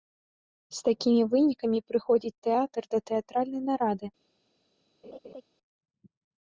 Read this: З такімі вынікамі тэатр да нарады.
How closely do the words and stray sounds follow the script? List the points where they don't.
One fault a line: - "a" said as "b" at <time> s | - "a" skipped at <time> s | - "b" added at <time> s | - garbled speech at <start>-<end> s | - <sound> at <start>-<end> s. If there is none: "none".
- "прыходзіць" added at 1.9 s
- "тэатральнай" added at 3.1 s
- laugh at 5.0-5.4 s